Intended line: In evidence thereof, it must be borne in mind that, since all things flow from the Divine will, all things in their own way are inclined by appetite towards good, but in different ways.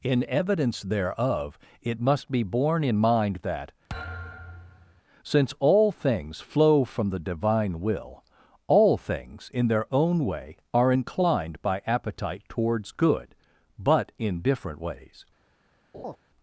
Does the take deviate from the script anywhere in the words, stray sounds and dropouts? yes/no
yes